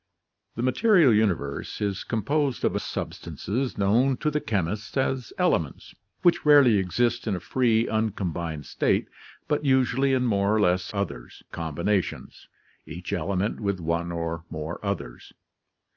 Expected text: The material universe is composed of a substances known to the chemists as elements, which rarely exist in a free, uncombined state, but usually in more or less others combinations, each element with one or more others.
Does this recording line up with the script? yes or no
yes